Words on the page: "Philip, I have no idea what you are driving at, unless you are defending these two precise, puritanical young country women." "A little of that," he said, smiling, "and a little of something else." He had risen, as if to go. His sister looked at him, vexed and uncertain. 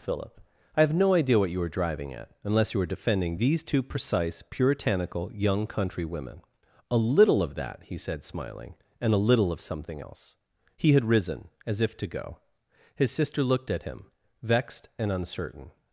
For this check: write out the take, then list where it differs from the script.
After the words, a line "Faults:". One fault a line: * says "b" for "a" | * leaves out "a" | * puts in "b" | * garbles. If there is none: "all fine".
"Philip, I have no idea what you were driving at, unless you were defending these two precise, puritanical young country women." "A little of that," he said, smiling, "and a little of something else." He had risen, as if to go. His sister looked at him, vexed and uncertain.
Faults:
* says "were" for "are"
* says "were" for "are"